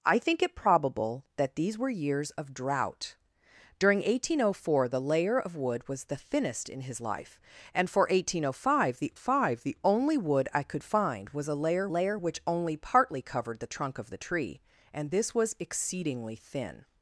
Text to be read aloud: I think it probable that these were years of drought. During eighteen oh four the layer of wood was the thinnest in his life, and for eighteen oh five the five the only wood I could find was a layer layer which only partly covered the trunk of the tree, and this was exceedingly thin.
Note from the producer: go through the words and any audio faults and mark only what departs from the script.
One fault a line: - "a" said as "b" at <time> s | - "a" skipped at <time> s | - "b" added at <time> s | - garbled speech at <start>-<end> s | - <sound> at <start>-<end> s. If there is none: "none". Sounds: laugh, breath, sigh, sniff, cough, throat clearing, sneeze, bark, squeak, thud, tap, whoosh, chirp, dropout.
none